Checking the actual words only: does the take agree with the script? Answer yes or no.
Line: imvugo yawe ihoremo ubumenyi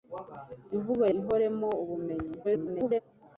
no